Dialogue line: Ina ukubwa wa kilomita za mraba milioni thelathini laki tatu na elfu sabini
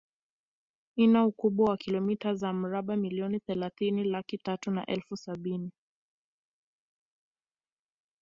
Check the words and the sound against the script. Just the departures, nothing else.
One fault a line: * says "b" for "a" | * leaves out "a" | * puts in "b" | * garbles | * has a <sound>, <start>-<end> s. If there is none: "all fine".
all fine